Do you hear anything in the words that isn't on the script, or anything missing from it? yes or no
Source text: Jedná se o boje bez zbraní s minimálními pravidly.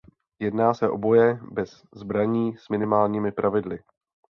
no